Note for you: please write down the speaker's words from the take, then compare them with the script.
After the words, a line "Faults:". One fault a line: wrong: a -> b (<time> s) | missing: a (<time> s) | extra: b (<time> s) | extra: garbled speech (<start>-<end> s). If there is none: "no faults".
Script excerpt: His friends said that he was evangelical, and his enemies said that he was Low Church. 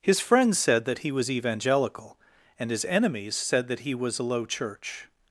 His friends said that he was evangelical, and his enemies said that he was a Low Church.
Faults:
extra: a (4.2 s)